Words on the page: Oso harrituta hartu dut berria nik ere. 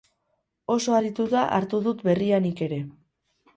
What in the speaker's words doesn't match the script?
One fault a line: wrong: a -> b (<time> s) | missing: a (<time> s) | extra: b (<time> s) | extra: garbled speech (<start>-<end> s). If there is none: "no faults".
no faults